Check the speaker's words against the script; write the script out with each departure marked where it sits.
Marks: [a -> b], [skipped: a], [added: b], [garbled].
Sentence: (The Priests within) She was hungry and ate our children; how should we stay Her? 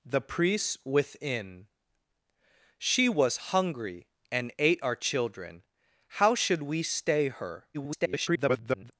(The Priests within) She was hungry and ate our children; how should we stay Her? [garbled]